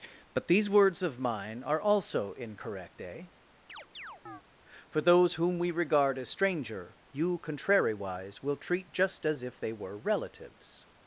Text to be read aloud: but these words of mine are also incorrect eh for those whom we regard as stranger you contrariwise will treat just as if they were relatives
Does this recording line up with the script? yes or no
yes